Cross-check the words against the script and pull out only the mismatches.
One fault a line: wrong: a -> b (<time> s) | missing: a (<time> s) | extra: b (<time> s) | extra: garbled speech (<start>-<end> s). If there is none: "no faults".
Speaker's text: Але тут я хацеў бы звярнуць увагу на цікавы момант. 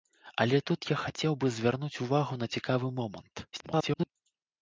extra: garbled speech (3.5-4.1 s)